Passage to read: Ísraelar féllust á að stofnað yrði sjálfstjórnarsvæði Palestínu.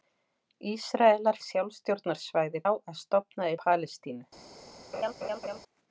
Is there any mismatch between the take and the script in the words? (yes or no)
yes